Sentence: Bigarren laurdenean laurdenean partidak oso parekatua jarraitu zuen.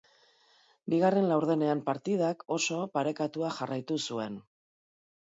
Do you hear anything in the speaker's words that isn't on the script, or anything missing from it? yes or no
yes